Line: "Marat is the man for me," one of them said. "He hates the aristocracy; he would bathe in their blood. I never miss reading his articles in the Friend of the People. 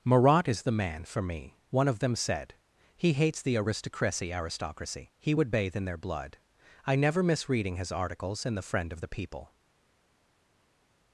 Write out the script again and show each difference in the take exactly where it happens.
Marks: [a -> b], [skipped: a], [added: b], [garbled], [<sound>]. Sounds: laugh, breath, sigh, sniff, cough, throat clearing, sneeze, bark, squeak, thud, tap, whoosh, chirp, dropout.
"Marat is the man for me," one of them said. "He hates the aristocracy; [added: aristocracy] he would bathe in their blood. I never miss reading his articles in the Friend of the People.